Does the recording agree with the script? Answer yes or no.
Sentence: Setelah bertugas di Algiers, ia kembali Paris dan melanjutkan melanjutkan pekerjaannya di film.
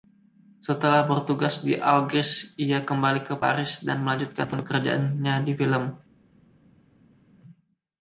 no